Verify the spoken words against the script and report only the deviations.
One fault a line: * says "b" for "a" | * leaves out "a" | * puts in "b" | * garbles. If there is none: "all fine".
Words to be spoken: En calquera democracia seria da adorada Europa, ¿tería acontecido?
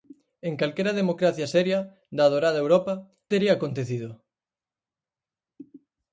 all fine